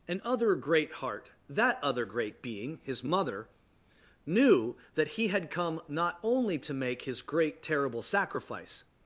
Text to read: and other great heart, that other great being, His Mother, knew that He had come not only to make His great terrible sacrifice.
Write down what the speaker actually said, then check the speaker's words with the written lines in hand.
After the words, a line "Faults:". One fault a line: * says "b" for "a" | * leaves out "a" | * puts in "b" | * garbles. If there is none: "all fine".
and other great heart, that other great being, His Mother, knew that He had come not only to make His great terrible sacrifice.
Faults:
all fine